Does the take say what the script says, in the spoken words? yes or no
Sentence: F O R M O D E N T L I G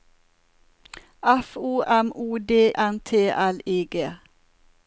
no